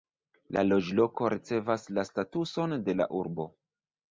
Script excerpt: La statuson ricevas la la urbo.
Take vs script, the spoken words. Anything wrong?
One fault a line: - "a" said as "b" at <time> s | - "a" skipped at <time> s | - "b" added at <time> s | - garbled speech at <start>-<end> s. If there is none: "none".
- "statuson" said as "loĝloko" at 0.7 s
- "statuson de" added at 2.1 s